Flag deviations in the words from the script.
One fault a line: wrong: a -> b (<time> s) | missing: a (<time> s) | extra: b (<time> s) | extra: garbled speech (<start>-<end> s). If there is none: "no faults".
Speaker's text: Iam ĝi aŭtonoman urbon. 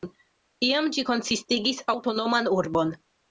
extra: konsistigis (1.1 s)